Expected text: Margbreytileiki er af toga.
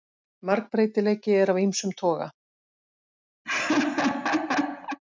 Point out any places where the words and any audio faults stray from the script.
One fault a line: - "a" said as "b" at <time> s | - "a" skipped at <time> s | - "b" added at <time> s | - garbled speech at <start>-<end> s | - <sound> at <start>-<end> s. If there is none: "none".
- "ýmsum" added at 1.6 s
- laugh at 3.4-5.0 s